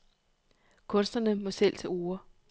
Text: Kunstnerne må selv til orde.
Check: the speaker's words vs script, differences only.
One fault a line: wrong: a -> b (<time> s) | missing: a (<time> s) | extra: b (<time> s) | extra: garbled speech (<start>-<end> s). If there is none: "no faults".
no faults